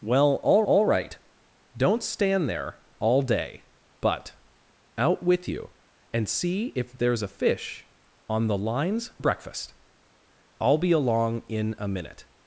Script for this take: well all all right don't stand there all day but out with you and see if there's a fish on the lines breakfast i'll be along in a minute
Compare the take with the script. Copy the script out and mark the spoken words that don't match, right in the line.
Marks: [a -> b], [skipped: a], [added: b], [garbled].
well all all right don't stand there all day but out with you and see if there's a fish on the lines breakfast i'll be along in a minute